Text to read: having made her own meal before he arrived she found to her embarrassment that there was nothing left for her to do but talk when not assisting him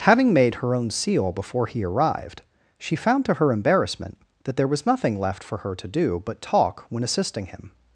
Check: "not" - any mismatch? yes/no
yes